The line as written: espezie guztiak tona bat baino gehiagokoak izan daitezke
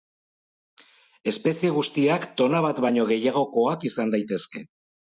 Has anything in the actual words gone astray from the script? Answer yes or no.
no